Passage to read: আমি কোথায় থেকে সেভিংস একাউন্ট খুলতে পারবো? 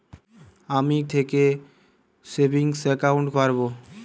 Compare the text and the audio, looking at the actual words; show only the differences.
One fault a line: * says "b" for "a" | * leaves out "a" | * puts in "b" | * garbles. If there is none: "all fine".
* leaves out "কোথায়"
* leaves out "খুলতে"